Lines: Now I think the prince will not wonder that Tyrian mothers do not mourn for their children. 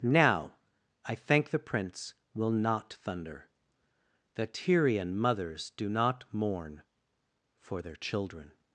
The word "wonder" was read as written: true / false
false